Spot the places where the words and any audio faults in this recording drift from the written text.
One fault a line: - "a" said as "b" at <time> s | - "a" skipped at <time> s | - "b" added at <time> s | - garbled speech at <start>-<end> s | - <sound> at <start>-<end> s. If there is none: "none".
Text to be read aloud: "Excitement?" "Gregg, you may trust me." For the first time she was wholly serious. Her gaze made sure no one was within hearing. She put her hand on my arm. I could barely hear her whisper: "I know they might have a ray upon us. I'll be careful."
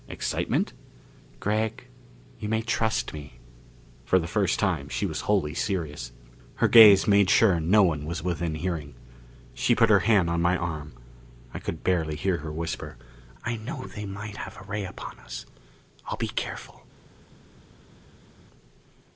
none